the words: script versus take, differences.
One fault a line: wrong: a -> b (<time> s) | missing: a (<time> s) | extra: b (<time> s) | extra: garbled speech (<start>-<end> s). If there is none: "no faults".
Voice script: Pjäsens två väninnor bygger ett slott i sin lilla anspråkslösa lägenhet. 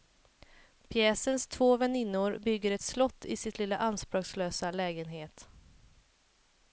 no faults